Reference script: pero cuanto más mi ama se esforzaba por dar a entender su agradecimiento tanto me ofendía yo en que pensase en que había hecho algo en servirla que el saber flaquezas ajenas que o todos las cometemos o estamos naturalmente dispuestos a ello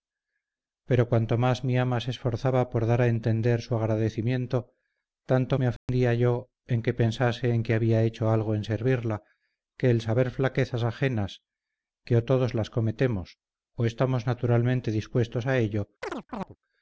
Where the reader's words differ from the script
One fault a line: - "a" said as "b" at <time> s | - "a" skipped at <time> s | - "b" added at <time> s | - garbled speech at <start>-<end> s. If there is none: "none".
none